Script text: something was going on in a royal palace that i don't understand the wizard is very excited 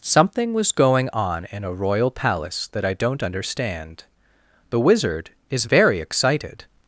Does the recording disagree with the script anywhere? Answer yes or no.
no